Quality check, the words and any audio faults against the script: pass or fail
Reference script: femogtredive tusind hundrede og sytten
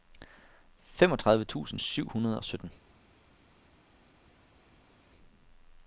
fail